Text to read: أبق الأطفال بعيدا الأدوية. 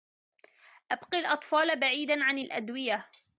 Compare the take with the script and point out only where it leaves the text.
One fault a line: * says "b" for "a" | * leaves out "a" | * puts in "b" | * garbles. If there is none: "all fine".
* puts in "عن"